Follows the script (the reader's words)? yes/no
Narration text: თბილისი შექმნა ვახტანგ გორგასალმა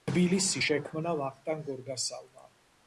yes